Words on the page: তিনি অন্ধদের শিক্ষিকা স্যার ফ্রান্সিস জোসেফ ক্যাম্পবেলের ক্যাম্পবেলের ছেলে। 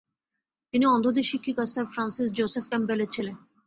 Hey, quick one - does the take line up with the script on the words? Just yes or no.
no